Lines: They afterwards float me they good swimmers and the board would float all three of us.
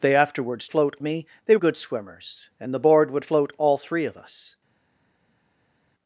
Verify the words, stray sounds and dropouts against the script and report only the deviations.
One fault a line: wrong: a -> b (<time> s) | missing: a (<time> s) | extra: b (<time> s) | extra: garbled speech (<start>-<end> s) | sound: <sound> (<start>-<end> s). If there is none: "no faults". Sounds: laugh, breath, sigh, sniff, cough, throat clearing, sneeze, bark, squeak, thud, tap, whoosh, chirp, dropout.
no faults